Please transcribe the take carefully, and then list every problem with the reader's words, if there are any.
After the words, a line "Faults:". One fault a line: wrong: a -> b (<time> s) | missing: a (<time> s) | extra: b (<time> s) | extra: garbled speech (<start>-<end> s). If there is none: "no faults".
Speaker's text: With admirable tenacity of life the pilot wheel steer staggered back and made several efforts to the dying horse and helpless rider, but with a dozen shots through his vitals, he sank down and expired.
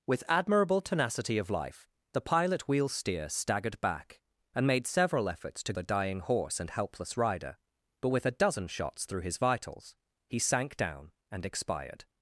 With admirable tenacity of life the pilot wheel steer staggered back and made several efforts to the dying horse and helpless rider, but with a dozen shots through his vitals, he sank down and expired.
Faults:
no faults